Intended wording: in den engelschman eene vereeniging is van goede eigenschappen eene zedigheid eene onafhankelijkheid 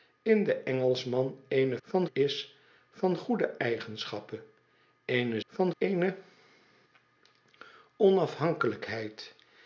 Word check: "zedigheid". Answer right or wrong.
wrong